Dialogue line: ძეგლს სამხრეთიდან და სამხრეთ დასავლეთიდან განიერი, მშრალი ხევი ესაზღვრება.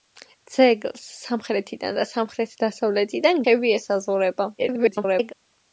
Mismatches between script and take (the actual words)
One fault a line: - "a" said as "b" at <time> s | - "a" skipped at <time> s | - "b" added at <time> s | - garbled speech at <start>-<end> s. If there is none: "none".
- "განიერი მშრალი" skipped at 3.4 s
- garbled speech at 4.6-5.3 s